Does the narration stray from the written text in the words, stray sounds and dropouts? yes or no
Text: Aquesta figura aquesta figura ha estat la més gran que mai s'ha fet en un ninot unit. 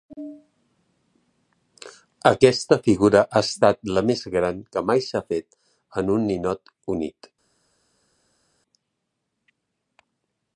yes